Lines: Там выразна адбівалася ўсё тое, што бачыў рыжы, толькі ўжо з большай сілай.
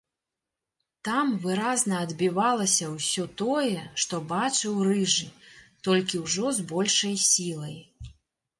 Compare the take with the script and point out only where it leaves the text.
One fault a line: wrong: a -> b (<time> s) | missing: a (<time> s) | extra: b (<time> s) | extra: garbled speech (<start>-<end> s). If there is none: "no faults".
no faults